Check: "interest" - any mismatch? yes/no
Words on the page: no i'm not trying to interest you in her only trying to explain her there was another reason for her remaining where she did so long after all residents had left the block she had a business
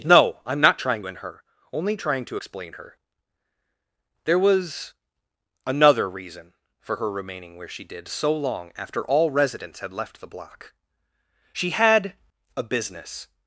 yes